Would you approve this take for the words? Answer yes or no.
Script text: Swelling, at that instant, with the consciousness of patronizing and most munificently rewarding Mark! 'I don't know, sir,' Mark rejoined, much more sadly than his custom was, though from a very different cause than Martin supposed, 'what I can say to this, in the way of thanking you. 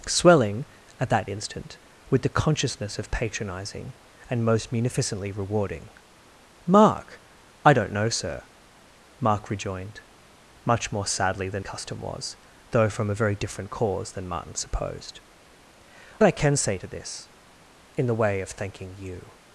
no